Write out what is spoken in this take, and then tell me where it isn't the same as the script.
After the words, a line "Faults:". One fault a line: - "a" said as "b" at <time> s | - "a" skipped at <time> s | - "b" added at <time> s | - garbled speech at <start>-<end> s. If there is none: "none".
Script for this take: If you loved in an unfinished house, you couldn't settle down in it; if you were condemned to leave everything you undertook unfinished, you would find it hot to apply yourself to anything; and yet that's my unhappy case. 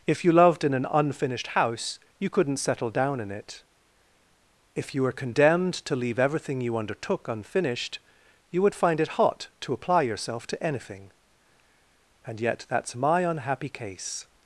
If you loved in an unfinished house, you couldn't settle down in it; if you were condemned to leave everything you undertook unfinished, you would find it hot to apply yourself to anything; and yet that's my unhappy case.
Faults:
none